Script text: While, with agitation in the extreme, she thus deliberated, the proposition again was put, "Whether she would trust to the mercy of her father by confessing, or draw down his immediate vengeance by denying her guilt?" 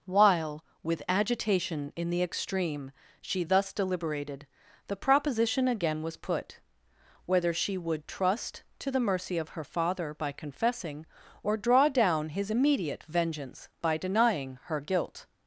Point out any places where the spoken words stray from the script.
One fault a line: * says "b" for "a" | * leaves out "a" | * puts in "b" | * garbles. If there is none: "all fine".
all fine